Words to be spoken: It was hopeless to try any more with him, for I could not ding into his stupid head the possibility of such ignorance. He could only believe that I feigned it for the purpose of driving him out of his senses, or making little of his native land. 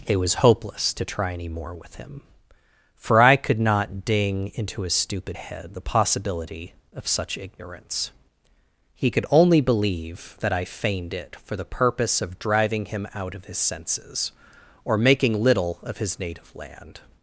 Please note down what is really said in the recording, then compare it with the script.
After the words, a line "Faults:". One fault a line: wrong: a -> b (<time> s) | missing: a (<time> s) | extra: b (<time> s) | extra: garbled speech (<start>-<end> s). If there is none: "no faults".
It was hopeless to try any more with him, for I could not ding into his stupid head the possibility of such ignorance. He could only believe that I feigned it for the purpose of driving him out of his senses, or making little of his native land.
Faults:
no faults